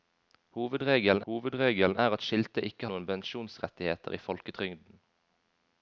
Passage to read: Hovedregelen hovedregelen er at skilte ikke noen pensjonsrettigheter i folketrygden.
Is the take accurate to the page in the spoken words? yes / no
yes